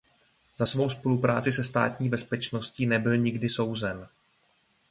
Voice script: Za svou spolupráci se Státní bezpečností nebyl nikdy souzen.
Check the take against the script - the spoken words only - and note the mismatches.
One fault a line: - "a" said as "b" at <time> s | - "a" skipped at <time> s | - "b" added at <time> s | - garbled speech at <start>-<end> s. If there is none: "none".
none